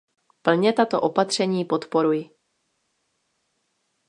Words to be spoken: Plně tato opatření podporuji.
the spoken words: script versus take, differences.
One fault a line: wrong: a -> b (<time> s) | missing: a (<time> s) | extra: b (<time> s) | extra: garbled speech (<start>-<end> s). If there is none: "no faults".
no faults